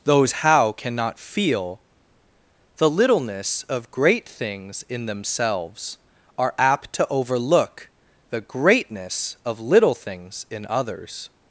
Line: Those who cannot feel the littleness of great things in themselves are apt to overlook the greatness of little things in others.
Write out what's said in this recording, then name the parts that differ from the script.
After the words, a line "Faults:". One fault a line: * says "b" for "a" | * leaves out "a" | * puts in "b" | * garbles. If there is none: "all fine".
Those how cannot feel the littleness of great things in themselves are apt to overlook the greatness of little things in others.
Faults:
* says "how" for "who"